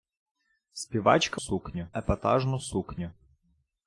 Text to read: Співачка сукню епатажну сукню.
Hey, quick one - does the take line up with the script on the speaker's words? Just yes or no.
yes